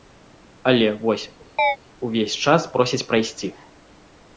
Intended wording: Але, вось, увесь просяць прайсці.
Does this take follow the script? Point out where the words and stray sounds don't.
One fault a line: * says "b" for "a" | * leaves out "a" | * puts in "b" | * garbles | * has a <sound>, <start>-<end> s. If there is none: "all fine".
* has a chirp, 1.6-1.8 s
* puts in "час"